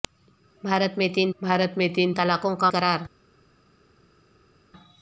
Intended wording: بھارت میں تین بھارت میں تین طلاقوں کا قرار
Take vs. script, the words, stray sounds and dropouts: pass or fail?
pass